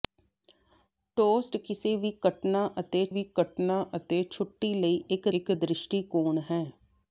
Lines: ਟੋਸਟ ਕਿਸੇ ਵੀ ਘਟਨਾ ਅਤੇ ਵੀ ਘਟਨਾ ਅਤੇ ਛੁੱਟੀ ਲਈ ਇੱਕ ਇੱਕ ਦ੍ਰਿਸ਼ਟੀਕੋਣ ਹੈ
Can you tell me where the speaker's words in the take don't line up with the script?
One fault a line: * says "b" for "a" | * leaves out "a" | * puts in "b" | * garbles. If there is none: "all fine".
all fine